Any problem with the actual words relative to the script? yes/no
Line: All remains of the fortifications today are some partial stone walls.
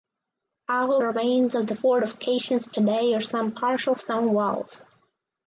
no